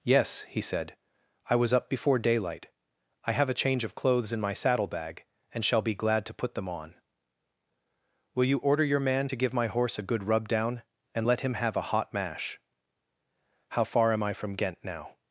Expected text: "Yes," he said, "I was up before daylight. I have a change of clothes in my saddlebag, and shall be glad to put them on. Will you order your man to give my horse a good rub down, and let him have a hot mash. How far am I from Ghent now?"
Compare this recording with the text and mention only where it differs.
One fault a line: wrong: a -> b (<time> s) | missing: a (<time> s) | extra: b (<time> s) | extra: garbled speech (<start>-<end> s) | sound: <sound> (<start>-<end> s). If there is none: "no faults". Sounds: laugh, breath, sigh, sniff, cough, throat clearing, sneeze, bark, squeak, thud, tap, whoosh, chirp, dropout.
no faults